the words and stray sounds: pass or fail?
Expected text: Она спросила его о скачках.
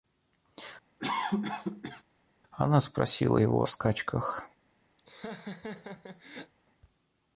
fail